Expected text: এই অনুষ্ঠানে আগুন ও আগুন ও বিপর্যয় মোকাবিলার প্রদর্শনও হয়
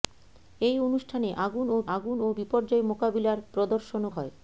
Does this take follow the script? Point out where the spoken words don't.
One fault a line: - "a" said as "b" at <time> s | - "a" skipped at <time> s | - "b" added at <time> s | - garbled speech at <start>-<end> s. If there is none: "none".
none